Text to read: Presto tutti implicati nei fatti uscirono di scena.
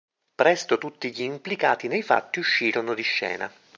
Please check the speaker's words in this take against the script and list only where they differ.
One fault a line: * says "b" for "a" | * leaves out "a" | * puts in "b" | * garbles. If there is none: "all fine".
* puts in "gli"